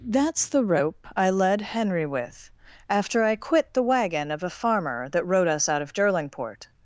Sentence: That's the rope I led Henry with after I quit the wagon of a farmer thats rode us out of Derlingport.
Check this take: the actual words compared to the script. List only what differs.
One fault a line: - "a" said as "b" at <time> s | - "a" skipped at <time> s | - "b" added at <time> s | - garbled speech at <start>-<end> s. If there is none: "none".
- "thats" said as "that" at 5.1 s